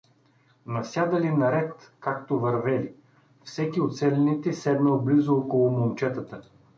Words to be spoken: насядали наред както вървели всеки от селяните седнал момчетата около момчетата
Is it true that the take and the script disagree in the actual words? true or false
true